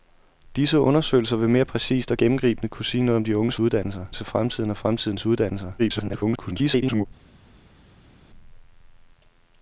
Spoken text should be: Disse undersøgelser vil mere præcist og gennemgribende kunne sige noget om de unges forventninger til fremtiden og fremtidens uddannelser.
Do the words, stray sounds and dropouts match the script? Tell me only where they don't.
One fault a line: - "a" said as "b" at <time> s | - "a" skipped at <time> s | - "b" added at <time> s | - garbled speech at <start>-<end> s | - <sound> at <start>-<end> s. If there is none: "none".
- "forventninger" said as "uddannelser" at 3.6 s
- garbled speech at 5.8-7.1 s